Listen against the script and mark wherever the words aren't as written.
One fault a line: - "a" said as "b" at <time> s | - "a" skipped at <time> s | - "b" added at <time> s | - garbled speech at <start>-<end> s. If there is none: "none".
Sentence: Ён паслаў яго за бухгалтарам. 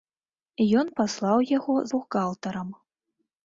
- "за" skipped at 1.8 s